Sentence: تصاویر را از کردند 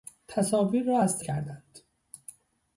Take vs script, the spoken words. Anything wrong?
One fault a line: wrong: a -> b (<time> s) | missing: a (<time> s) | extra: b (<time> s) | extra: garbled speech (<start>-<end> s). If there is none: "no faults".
no faults